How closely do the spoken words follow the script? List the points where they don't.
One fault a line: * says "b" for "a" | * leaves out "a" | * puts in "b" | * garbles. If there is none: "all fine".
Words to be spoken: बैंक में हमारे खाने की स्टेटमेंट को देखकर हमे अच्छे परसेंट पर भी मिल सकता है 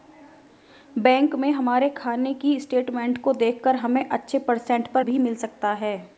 all fine